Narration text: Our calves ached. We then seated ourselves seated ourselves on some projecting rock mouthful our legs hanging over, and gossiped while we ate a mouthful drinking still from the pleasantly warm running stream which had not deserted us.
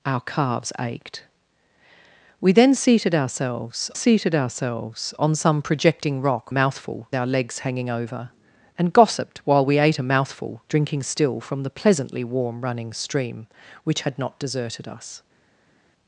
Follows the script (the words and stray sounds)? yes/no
yes